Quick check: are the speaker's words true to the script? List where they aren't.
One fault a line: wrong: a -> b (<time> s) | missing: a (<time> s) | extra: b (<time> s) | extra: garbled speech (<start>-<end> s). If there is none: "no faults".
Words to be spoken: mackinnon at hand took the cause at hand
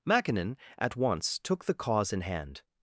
wrong: hand -> once (0.9 s)
wrong: at -> in (2.1 s)